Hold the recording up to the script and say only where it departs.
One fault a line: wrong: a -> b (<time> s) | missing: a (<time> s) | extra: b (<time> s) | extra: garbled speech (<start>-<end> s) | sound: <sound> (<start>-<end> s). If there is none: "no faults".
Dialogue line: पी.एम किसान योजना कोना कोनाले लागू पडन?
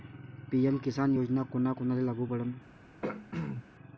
sound: throat clearing (3.0-3.6 s)